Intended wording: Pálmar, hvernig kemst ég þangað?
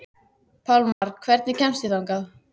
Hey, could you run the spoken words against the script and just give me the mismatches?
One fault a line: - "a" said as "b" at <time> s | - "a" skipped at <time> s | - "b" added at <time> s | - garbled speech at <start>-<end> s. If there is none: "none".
none